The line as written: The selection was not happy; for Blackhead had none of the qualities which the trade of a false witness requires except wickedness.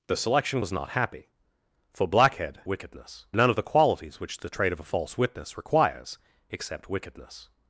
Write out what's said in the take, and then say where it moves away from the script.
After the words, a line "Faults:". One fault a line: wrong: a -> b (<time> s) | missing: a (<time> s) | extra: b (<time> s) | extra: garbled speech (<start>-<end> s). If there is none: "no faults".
The selection was not happy; for Blackhead wickedness none of the qualities which the trade of a false witness requires except wickedness.
Faults:
wrong: had -> wickedness (2.7 s)